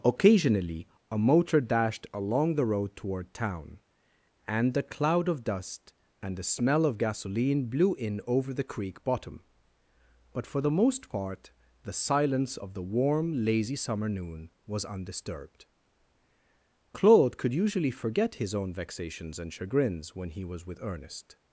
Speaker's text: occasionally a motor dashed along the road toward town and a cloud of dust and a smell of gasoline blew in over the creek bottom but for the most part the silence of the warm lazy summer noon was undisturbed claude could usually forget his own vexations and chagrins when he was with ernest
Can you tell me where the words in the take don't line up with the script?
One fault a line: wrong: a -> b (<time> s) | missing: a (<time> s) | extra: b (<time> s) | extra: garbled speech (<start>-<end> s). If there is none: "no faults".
wrong: a -> the (4.7 s)
wrong: a -> the (6.4 s)